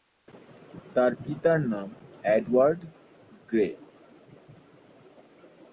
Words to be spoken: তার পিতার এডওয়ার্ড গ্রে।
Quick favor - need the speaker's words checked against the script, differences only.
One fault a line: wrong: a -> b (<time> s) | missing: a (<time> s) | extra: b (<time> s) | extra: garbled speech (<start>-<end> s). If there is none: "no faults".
extra: নাম (1.7 s)